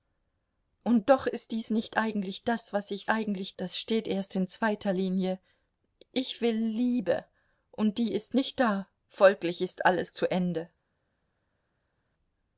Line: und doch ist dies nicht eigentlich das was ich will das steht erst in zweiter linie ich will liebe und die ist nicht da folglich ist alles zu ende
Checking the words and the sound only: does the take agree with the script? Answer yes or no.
no